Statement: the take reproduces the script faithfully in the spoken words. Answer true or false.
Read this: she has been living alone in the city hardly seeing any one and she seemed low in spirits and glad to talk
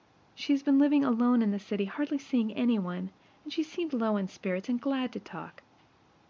true